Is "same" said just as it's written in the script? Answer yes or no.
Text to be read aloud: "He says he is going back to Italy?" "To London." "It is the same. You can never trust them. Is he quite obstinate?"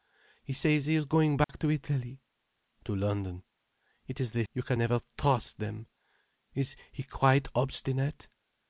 no